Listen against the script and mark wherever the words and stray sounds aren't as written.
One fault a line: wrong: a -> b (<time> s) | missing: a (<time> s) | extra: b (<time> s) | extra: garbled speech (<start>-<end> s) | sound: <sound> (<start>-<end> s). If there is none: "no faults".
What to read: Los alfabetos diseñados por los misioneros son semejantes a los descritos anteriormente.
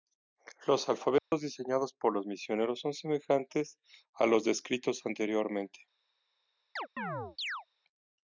sound: dropout (1.2-1.3 s)
sound: chirp (6.8-7.7 s)